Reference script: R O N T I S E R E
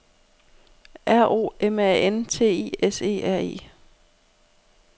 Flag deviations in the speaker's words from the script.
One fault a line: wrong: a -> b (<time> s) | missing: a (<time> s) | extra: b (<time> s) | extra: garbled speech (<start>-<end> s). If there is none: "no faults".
extra: M A (1.6 s)